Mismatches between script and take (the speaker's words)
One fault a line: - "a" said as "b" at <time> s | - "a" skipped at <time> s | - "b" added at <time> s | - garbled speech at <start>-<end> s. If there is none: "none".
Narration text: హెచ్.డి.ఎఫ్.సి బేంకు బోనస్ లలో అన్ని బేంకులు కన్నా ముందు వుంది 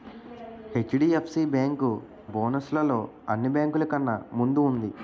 none